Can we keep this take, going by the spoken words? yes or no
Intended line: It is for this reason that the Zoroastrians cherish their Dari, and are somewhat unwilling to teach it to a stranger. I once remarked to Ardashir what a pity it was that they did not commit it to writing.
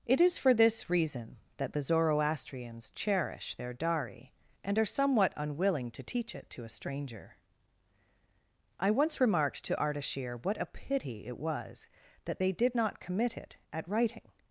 no